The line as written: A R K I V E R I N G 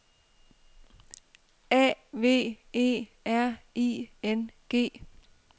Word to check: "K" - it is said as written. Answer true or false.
false